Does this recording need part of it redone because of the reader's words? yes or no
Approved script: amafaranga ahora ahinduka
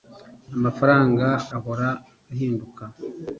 no